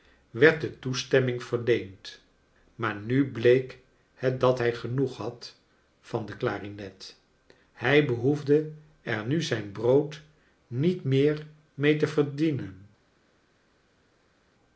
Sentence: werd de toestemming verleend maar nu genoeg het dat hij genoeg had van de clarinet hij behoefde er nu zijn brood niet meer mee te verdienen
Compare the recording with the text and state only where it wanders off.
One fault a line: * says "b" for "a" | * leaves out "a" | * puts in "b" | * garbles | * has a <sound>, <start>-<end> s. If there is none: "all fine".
* says "bleek" for "genoeg"